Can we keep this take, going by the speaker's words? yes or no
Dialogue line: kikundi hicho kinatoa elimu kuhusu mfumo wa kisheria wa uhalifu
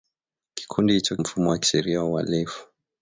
no